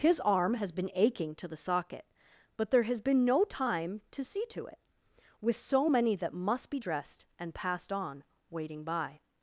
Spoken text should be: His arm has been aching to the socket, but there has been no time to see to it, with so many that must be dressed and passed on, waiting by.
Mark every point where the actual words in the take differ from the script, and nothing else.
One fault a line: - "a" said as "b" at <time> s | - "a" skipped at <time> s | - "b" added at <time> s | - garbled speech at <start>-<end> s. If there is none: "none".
none